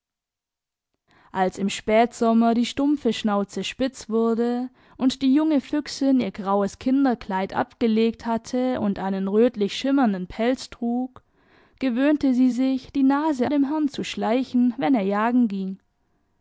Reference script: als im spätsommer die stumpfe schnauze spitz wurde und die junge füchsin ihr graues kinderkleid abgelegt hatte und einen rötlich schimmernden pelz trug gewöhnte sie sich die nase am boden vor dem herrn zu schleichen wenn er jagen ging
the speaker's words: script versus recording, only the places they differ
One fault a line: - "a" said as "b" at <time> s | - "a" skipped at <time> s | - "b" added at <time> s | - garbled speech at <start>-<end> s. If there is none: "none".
- "am boden vor" skipped at 13.5 s